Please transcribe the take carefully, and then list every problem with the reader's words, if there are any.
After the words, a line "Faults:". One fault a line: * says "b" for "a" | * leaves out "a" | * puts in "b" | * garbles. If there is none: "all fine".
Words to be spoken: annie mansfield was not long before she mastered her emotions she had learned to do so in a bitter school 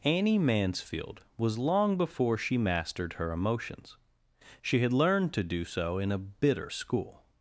annie mansfield was long before she mastered her emotions she had learned to do so in a bitter school
Faults:
* leaves out "not"